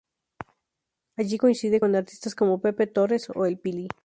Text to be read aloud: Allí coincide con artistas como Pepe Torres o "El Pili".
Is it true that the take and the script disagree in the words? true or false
false